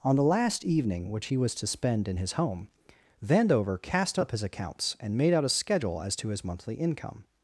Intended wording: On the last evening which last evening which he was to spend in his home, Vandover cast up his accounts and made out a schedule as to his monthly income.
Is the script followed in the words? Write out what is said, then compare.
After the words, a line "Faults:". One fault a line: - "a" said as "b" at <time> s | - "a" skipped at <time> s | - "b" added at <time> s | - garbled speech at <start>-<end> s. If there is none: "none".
On the last evening which he was to spend in his home, Vandover cast up his accounts and made out a schedule as to his monthly income.
Faults:
- "last evening which" skipped at 1.3 s